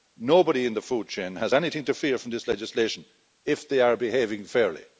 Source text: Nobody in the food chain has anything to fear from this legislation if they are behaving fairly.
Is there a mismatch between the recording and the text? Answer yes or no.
no